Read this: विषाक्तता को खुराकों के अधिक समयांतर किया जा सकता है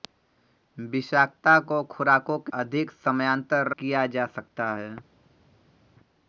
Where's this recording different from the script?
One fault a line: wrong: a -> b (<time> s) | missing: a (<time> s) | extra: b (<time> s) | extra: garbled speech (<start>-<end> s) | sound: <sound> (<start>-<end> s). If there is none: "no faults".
no faults